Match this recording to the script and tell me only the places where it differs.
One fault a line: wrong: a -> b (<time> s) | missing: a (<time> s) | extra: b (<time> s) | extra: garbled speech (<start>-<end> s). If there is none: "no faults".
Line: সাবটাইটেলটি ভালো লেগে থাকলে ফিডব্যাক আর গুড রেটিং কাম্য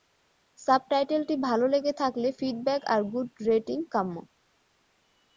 no faults